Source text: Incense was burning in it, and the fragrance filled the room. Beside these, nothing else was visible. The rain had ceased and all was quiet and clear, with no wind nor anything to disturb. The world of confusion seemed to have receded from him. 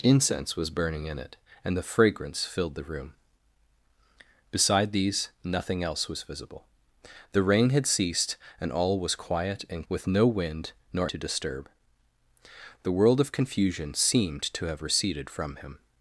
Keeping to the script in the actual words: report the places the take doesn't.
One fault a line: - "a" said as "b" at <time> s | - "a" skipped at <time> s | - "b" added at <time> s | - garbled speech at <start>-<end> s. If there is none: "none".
- "clear" skipped at 9.8 s
- "anything" skipped at 11.1 s